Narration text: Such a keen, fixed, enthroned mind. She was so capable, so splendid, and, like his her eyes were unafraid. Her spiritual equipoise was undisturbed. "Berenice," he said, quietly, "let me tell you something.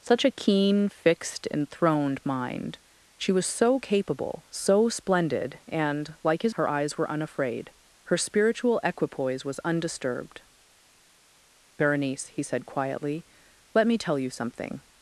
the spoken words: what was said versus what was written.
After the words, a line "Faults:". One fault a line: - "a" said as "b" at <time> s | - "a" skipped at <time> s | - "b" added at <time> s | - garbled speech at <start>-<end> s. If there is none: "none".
Such a keen, fixed, enthroned mind. She was so capable, so splendid, and, like his her eyes were unafraid. Her spiritual equipoise was undisturbed. "Berenice," he said, quietly, "let me tell you something.
Faults:
none